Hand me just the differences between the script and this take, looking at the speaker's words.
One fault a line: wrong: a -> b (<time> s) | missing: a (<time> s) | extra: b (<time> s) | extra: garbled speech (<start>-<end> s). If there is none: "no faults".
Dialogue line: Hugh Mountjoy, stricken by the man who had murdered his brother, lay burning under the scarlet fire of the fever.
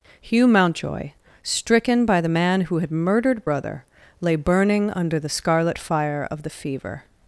missing: his (3.5 s)